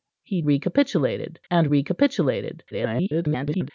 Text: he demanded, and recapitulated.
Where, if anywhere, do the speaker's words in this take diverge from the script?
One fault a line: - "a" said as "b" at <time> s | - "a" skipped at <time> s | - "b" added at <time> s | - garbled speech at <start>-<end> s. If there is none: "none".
- "demanded" said as "recapitulated" at 0.4 s
- garbled speech at 2.7-3.7 s